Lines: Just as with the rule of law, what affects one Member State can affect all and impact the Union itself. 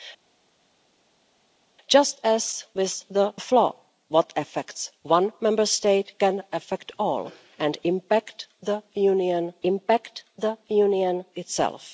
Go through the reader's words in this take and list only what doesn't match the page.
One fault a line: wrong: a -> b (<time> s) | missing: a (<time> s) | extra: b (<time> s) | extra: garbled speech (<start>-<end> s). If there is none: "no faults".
missing: rule (3.3 s)
extra: impact the Union (9.6 s)